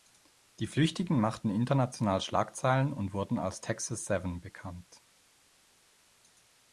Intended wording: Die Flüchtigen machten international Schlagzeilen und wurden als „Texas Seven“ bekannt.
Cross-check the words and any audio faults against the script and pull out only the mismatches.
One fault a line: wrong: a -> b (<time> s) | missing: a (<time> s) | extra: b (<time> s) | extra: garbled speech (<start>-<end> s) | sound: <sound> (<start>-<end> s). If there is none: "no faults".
no faults